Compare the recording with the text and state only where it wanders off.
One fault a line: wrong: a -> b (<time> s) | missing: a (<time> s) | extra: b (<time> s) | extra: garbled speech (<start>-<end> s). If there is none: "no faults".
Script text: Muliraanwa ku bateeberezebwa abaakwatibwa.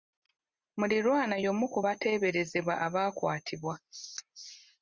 extra: y'omu (1.4 s)